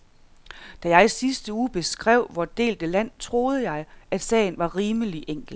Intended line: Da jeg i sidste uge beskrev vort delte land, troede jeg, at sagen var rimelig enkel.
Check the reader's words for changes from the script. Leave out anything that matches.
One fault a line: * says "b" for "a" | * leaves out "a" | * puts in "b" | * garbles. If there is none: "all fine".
all fine